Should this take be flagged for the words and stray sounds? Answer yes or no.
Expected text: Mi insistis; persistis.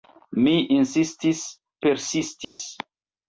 yes